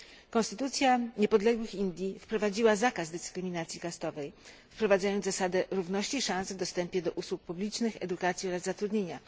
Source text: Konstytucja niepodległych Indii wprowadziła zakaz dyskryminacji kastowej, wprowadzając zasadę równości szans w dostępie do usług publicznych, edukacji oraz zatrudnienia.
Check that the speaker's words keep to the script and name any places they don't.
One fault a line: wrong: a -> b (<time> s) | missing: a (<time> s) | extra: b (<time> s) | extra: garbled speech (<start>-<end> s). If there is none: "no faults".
no faults